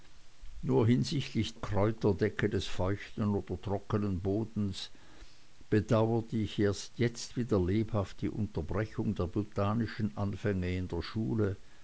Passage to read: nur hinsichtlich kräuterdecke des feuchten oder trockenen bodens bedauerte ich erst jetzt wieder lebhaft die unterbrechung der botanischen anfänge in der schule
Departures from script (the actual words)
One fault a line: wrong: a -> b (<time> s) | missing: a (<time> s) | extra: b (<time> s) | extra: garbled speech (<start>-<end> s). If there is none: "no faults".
no faults